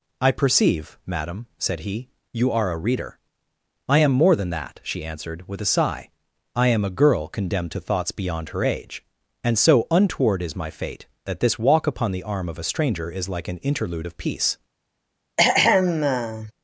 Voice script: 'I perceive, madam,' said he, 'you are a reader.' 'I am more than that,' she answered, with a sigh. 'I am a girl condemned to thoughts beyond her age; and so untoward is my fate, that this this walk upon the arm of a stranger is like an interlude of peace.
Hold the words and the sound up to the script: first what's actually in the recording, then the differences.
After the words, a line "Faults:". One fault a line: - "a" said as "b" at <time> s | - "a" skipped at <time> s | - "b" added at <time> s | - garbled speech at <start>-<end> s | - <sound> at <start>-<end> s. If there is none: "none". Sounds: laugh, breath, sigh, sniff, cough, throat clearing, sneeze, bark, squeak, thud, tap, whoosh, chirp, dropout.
'I perceive, madam,' said he, 'you are a reader.' 'I am more than that,' she answered, with a sigh. 'I am a girl condemned to thoughts beyond her age; and so untoward is my fate, that this walk upon the arm of a stranger is like an interlude of peace.
Faults:
- "this" skipped at 11.6 s
- throat clearing at 15.4-16.5 s